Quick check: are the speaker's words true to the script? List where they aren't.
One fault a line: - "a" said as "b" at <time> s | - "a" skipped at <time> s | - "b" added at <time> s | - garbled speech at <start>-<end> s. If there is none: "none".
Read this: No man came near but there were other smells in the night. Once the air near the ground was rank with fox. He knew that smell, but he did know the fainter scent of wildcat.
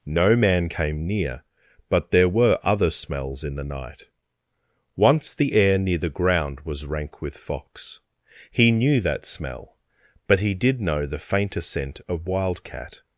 none